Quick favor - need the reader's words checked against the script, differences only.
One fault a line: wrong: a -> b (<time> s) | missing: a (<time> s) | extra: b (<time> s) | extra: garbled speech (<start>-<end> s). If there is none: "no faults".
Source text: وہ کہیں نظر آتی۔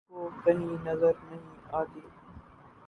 extra: نہیں (1.2 s)